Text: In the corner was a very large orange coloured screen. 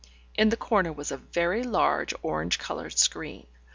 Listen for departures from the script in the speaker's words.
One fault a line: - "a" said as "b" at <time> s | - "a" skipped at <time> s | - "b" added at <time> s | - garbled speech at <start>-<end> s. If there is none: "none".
none